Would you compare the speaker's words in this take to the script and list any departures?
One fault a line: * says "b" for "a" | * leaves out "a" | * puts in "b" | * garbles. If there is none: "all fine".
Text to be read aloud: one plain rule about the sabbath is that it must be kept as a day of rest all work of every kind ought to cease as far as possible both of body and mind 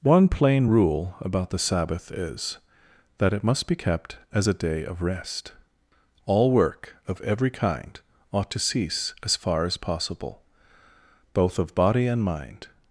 all fine